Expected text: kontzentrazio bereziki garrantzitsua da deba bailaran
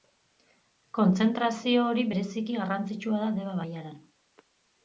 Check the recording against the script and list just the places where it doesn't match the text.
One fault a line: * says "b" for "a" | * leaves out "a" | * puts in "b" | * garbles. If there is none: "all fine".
* puts in "hori"